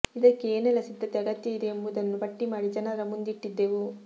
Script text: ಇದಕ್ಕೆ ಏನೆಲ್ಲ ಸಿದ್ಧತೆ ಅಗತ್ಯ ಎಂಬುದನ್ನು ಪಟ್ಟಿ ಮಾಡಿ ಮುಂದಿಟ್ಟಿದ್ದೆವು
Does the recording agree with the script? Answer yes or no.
no